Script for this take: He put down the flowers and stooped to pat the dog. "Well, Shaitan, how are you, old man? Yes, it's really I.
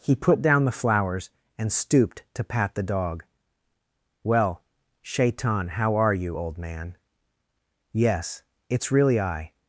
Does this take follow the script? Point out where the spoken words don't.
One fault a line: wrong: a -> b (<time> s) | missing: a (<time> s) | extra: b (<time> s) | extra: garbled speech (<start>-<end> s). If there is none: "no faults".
no faults